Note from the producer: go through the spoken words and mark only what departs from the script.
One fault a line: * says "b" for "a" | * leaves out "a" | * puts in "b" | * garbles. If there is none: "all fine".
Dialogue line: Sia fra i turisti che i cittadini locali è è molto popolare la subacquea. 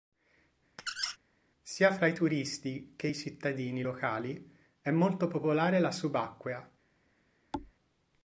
* leaves out "è"